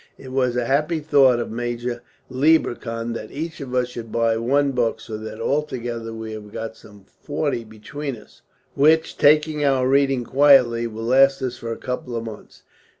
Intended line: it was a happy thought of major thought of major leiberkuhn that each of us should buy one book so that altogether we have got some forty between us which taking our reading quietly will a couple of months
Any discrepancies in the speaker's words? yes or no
yes